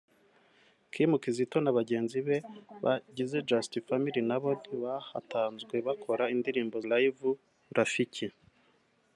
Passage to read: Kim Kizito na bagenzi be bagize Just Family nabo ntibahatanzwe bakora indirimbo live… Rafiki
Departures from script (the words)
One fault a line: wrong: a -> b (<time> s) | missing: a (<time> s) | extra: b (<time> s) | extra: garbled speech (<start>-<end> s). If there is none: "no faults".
no faults